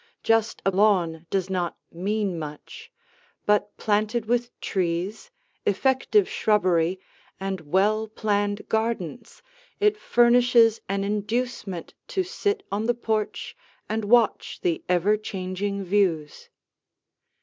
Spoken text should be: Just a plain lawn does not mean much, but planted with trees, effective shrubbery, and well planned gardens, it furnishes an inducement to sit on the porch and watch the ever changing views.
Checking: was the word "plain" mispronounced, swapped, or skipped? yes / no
yes